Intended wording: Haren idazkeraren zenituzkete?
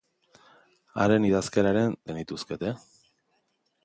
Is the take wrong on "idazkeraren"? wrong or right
right